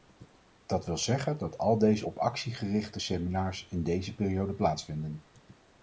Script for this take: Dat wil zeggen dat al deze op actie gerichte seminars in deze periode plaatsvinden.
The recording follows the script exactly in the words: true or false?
true